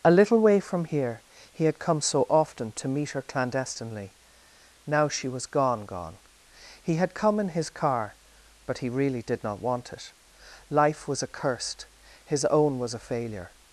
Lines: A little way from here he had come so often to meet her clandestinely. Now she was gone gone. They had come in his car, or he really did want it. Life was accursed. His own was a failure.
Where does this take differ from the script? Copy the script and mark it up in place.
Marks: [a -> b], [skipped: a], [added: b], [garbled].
A little way from here he had come so often to meet her clandestinely. Now she was gone gone. [They -> He] had come in his car, [or -> but] he really did [added: not] want it. Life was accursed. His own was a failure.